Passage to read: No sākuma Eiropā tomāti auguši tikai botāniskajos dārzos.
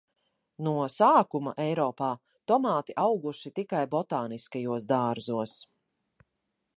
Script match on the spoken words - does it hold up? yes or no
yes